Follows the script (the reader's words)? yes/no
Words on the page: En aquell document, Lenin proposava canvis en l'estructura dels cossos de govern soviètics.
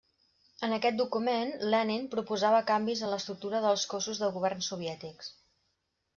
no